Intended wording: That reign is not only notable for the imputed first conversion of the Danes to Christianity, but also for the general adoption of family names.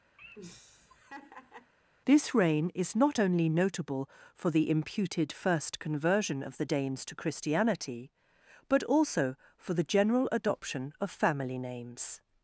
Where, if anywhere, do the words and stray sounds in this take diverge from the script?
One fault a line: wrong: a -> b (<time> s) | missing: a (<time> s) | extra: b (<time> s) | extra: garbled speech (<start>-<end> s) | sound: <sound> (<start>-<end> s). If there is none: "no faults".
sound: laugh (0.2-1.7 s)
wrong: That -> This (2.1 s)